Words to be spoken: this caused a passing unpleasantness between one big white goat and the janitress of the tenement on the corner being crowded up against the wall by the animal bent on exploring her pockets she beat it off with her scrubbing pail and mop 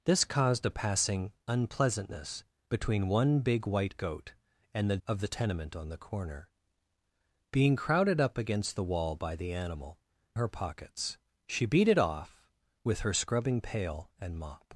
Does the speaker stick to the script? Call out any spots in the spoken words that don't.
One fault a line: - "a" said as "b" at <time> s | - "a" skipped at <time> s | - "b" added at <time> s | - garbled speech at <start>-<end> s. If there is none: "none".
- "janitress" skipped at 5.0 s
- "bent on exploring" skipped at 10.0 s